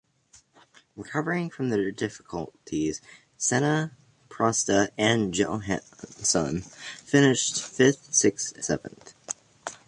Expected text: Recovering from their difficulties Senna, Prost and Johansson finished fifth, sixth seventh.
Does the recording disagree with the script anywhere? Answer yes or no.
no